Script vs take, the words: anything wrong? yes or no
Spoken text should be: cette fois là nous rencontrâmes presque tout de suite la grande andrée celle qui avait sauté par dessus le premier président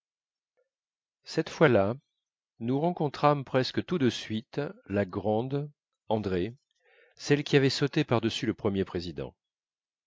no